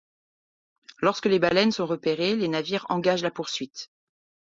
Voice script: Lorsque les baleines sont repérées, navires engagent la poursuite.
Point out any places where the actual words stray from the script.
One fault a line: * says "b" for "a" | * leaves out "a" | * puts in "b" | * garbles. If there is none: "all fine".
* puts in "les"